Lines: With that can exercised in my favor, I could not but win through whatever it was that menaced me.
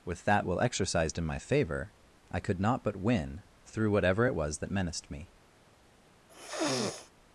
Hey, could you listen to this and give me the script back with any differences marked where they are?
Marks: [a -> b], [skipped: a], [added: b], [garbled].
With that [can -> will] exercised in my favor, I could not but win through whatever it was that menaced me.